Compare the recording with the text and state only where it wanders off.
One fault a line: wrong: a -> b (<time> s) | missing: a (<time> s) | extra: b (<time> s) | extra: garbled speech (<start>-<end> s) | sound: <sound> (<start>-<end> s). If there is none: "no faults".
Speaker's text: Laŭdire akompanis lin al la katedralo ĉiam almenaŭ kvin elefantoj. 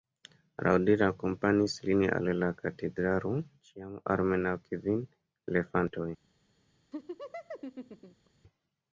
sound: laugh (6.9-8.3 s)